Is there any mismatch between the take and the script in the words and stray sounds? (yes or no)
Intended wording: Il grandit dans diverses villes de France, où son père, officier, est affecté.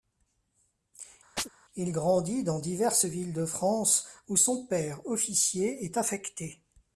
yes